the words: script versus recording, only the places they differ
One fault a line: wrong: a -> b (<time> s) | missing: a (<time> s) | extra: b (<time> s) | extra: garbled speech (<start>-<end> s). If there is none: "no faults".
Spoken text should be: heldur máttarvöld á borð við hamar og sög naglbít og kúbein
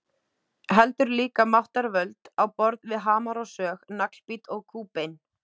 extra: líka (1.2 s)